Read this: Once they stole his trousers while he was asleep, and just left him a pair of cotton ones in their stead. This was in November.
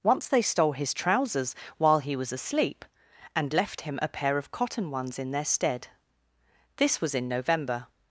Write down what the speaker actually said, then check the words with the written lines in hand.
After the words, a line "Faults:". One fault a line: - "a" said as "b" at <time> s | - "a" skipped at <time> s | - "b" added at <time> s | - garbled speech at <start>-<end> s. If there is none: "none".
Once they stole his trousers while he was asleep, and left him a pair of cotton ones in their stead. This was in November.
Faults:
- "just" skipped at 3.5 s